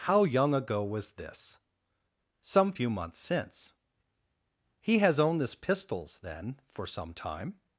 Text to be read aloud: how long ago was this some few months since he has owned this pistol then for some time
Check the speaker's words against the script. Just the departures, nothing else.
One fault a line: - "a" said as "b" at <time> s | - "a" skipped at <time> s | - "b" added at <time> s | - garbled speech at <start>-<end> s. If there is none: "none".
- "long" said as "young" at 0.2 s
- "pistol" said as "pistols" at 5.6 s